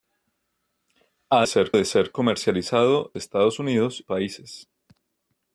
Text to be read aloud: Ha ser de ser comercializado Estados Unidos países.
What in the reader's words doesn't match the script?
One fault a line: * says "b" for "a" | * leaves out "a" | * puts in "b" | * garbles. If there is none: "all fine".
all fine